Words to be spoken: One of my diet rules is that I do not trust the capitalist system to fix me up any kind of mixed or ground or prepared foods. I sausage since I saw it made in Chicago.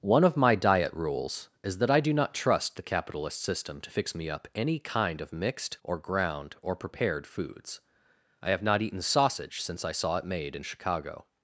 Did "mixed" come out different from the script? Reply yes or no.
no